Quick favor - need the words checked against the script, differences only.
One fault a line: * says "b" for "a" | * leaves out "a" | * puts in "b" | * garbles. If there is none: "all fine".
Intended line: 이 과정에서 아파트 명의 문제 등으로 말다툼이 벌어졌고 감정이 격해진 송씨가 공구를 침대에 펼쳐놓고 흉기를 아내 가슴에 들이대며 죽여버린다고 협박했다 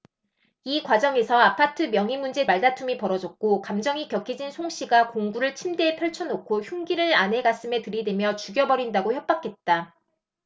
* leaves out "등으로"